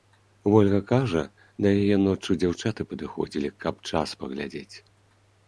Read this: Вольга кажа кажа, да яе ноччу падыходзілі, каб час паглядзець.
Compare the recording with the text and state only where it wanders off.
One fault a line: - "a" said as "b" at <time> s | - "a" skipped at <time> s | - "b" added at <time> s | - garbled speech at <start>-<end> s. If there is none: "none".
- "кажа" skipped at 1.2 s
- "дзяўчаты" added at 2.5 s